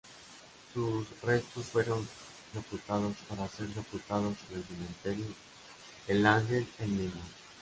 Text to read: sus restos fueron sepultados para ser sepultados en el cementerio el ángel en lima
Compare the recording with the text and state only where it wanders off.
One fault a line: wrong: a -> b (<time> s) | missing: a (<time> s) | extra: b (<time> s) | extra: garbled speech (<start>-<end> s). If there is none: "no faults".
no faults